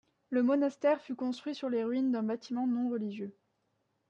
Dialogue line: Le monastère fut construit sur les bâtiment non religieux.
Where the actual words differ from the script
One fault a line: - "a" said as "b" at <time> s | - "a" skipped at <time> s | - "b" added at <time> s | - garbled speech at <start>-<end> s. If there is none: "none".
- "ruines d'un" added at 1.8 s